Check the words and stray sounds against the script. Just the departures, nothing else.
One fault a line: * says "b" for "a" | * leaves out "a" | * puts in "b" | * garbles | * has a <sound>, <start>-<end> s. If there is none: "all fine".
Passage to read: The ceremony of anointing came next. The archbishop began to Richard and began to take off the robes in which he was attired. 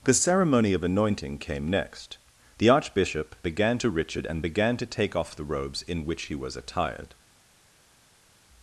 all fine